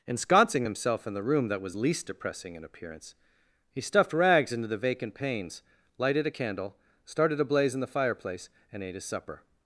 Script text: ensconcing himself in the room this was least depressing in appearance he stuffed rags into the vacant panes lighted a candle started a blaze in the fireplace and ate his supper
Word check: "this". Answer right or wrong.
wrong